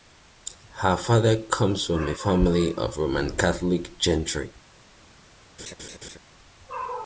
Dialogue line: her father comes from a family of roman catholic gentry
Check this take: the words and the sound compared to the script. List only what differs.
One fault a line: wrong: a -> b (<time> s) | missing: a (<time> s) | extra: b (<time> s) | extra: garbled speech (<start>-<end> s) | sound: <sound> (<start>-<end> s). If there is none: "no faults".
sound: laugh (5.6-6.2 s)